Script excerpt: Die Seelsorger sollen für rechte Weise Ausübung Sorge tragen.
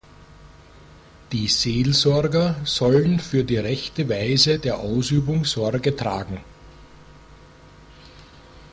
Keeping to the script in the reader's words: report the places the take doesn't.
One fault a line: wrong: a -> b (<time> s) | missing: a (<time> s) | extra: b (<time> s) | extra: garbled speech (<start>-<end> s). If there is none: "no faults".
extra: die (3.4 s)
extra: der (4.6 s)